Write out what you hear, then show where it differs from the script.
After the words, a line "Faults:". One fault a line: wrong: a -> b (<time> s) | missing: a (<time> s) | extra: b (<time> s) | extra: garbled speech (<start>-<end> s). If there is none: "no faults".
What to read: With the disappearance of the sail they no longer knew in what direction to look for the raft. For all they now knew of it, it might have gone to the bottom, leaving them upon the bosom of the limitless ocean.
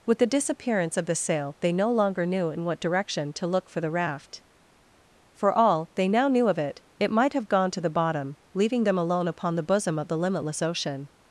With the disappearance of the sail they no longer knew in what direction to look for the raft. For all they now knew of it, it might have gone to the bottom, leaving them alone upon the bosom of the limitless ocean.
Faults:
extra: alone (9.0 s)